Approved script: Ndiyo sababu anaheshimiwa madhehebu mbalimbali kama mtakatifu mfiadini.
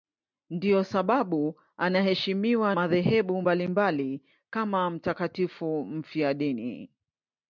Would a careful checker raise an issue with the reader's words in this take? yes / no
no